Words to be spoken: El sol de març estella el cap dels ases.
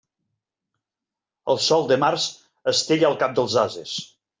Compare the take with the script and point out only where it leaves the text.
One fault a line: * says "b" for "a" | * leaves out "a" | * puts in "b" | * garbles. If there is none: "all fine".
all fine